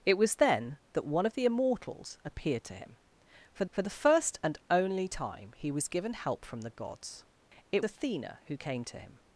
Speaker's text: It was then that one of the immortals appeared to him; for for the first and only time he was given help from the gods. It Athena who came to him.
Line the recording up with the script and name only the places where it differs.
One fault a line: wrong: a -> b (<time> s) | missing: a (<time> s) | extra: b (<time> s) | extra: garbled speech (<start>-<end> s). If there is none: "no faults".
no faults